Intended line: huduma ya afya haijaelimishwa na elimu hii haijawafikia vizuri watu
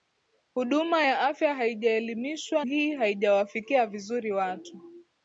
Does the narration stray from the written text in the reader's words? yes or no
yes